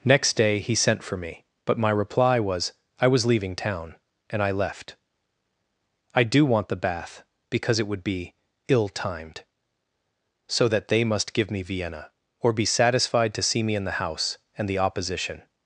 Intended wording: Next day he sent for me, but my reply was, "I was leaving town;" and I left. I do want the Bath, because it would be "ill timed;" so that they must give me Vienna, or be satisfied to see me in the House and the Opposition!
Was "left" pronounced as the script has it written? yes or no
yes